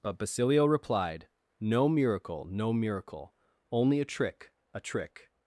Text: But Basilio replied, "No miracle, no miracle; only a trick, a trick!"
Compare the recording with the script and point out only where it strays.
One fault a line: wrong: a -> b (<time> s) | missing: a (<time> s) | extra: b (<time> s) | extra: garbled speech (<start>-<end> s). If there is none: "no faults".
no faults